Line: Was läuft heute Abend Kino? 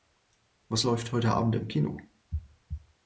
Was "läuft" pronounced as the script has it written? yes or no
yes